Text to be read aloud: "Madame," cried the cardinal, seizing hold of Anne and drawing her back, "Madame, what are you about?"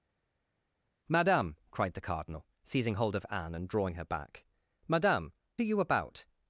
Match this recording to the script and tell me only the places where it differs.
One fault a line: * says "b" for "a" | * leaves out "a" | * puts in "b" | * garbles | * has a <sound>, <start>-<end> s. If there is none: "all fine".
* leaves out "what"